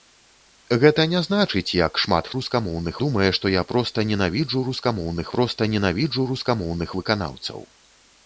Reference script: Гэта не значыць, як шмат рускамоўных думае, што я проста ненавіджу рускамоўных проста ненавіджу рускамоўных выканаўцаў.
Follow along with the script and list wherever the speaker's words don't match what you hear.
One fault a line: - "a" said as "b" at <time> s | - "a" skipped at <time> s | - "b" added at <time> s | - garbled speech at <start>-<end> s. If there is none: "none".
none